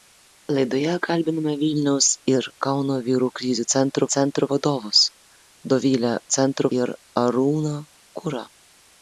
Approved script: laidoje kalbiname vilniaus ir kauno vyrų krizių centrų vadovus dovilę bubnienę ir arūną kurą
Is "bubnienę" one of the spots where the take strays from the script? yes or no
yes